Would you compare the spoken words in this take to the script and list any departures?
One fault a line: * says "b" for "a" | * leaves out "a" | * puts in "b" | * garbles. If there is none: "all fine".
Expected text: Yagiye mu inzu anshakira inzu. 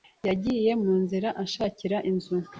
* says "nzira" for "inzu"